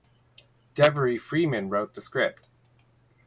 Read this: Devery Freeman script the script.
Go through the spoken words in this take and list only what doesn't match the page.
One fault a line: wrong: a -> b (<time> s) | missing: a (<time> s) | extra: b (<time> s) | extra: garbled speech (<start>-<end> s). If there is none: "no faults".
wrong: script -> wrote (1.7 s)